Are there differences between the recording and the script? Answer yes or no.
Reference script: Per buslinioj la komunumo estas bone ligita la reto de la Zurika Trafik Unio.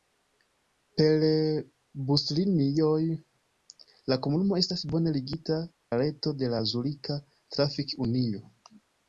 no